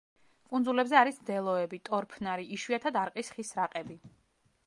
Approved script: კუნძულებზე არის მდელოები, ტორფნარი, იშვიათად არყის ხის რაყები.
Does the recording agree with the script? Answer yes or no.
yes